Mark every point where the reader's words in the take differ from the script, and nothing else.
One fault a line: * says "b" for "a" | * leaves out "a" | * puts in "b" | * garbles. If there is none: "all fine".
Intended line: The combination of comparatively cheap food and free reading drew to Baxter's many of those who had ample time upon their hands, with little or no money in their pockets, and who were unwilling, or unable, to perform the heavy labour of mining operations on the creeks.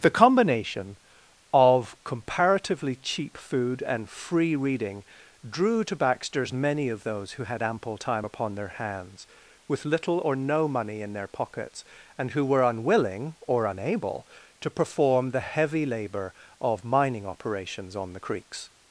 all fine